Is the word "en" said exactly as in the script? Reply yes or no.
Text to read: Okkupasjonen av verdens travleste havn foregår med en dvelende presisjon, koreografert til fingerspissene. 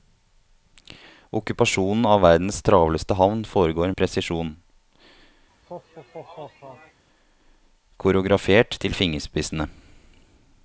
no